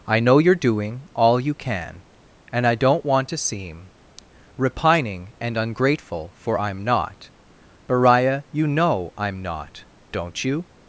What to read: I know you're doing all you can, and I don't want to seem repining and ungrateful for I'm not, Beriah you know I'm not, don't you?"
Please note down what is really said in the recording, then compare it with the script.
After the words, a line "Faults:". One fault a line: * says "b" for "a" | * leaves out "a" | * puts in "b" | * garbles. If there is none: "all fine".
I know you're doing all you can, and I don't want to seem repining and ungrateful for I'm not, Beriah you know I'm not, don't you?"
Faults:
all fine